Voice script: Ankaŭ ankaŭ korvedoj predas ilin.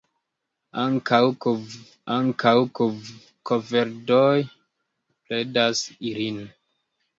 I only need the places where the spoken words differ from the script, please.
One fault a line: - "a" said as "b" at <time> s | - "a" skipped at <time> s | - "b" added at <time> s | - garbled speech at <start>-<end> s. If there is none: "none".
none